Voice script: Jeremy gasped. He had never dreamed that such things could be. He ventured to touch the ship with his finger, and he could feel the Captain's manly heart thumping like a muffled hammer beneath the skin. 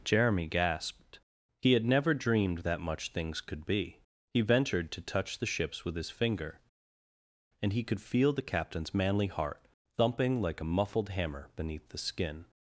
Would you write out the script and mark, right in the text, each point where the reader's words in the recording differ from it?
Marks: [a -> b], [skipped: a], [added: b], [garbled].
Jeremy gasped. He had never dreamed that [such -> much] things could be. He ventured to touch the [ship -> ships] with his finger, and he could feel the Captain's manly heart thumping like a muffled hammer beneath the skin.